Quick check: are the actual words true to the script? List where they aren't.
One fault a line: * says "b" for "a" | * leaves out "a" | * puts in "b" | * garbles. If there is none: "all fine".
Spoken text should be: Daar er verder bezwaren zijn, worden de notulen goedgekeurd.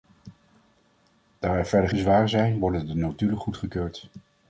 all fine